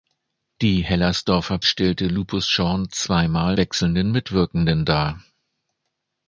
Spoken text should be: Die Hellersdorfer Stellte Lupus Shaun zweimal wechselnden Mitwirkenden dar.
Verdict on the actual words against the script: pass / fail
pass